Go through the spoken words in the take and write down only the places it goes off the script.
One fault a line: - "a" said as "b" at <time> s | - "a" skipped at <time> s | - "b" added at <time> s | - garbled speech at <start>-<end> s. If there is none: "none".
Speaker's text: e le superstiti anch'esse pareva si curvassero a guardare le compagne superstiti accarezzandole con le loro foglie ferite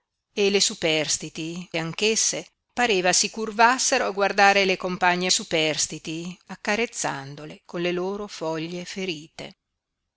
none